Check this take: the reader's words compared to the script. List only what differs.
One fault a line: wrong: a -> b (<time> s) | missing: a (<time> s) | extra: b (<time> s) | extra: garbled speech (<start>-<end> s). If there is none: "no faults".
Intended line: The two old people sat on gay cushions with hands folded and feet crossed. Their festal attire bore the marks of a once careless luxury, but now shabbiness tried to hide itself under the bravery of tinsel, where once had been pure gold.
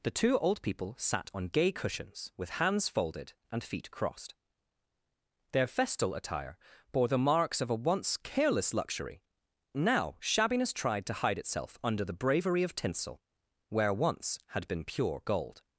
missing: but (9.2 s)